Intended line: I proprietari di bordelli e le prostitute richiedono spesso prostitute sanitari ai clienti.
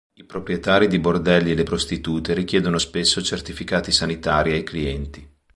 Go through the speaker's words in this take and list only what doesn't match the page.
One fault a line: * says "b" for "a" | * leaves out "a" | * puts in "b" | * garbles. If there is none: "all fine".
* says "certificati" for "prostitute"